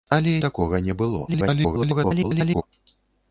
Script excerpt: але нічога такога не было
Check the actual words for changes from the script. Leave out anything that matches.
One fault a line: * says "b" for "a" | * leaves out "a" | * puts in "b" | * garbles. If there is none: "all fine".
* leaves out "нічога"
* garbles